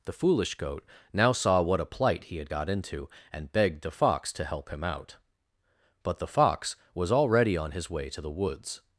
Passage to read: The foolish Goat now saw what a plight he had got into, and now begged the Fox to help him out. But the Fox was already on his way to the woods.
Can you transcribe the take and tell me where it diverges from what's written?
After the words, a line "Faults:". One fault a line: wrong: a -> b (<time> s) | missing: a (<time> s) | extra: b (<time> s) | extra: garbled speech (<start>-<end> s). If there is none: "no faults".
The foolish Goat now saw what a plight he had got into, and begged the Fox to help him out. But the Fox was already on his way to the woods.
Faults:
missing: now (3.5 s)